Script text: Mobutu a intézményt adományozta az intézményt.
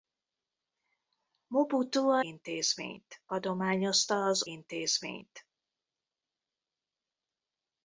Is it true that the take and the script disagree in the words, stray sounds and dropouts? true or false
false